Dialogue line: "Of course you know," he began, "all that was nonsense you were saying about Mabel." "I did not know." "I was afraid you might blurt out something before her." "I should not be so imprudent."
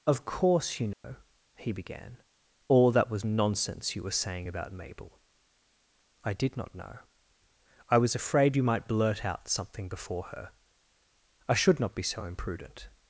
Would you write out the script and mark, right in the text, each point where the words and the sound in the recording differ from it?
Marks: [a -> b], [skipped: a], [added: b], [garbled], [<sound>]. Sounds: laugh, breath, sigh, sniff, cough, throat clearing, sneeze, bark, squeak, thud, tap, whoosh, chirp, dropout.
"Of course you know," [dropout] he began, "all that was nonsense you were saying about Mabel." "I did not know." "I was afraid you might blurt out something before her." "I should not be so imprudent."